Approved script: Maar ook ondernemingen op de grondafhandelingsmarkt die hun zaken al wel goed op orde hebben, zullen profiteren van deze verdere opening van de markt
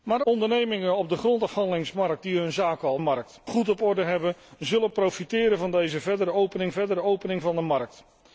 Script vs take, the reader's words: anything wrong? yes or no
yes